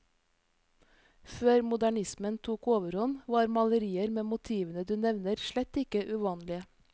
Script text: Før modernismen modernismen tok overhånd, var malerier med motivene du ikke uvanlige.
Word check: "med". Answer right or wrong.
right